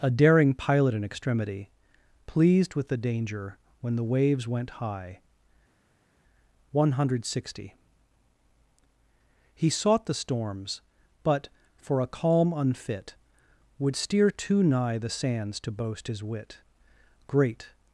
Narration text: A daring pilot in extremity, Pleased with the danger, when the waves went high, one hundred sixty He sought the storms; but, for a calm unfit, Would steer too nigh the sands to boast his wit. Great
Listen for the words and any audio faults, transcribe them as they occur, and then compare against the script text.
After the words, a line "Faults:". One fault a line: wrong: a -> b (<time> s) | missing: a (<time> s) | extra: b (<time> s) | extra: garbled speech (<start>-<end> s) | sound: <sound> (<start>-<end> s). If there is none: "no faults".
A daring pilot in extremity, Pleased with the danger, when the waves went high, one hundred sixty He sought the storms; but, for a calm unfit, Would steer too nigh the sands to boast his wit. Great
Faults:
no faults